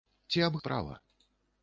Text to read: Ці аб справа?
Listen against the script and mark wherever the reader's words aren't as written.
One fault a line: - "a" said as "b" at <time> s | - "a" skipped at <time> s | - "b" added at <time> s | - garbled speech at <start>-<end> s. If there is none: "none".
none